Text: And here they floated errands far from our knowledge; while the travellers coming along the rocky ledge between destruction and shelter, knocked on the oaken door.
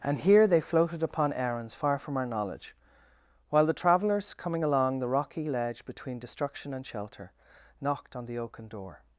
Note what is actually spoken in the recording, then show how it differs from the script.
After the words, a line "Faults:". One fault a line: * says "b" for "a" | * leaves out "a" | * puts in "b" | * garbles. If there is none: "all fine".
And here they floated upon errands far from our knowledge; while the travellers coming along the rocky ledge between destruction and shelter, knocked on the oaken door.
Faults:
* puts in "upon"